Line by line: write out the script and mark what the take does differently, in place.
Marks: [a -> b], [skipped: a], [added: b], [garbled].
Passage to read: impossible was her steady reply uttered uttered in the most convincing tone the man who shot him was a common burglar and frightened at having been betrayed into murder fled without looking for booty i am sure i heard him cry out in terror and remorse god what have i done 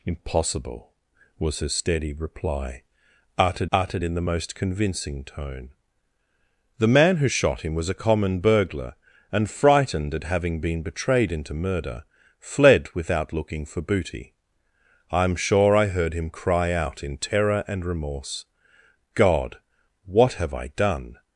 impossible was her steady reply uttered uttered in the most convincing tone the man who shot him was a common burglar and frightened at having been betrayed into murder fled without looking for booty i am sure i heard him cry out in terror and remorse god what have i done